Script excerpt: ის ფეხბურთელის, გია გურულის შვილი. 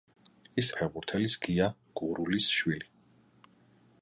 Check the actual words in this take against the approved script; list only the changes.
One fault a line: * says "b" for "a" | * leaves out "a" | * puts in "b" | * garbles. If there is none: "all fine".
all fine